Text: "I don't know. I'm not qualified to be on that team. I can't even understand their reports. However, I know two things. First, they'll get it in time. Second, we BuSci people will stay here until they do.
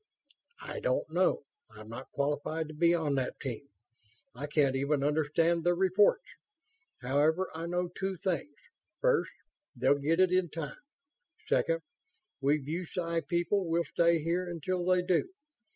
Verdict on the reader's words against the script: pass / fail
pass